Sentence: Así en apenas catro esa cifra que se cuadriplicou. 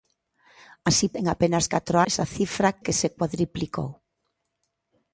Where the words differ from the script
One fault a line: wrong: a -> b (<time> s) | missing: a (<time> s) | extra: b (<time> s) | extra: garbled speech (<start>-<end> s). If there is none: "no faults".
no faults